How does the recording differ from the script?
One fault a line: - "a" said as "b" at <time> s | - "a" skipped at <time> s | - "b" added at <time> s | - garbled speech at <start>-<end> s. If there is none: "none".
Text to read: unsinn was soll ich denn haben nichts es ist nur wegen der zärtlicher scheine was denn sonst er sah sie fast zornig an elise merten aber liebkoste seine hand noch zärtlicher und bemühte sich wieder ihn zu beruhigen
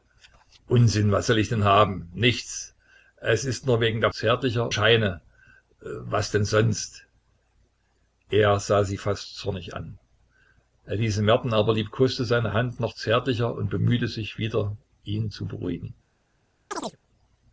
none